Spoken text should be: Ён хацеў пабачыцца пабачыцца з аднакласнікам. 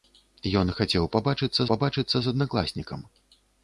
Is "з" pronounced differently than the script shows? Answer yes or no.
no